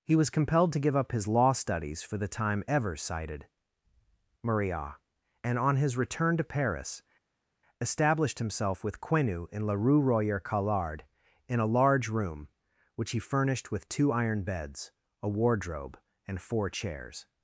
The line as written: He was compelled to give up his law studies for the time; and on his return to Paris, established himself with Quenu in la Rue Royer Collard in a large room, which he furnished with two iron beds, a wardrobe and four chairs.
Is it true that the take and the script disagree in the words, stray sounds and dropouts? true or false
true